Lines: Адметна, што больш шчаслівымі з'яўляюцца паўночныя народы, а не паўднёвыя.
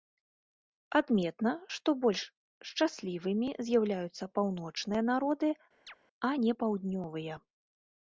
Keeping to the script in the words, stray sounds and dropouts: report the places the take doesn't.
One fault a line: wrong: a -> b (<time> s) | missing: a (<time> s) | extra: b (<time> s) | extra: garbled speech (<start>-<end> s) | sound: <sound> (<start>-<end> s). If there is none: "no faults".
sound: chirp (5.9-6.0 s)